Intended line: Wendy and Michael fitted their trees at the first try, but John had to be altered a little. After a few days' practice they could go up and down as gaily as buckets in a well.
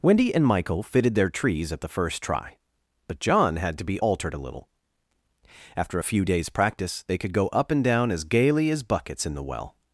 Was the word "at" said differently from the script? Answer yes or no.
no